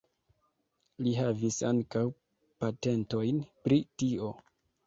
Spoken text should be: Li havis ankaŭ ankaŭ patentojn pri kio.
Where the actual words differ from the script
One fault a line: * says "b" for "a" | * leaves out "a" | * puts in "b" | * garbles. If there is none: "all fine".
* leaves out "ankaŭ"
* says "tio" for "kio"